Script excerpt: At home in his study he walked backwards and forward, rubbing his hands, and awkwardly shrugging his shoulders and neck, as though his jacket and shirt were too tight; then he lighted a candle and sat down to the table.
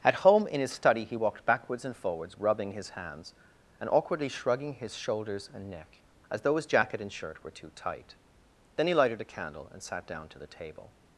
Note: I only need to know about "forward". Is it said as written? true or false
false